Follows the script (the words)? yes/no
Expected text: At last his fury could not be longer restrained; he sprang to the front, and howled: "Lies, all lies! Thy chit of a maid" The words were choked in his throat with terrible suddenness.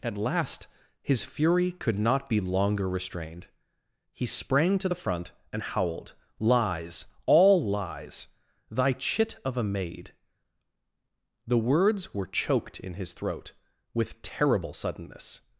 yes